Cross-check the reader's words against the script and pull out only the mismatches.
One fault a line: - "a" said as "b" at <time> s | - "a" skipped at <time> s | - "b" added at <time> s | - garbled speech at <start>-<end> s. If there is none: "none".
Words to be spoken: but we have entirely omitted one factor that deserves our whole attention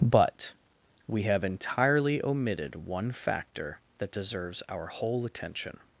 none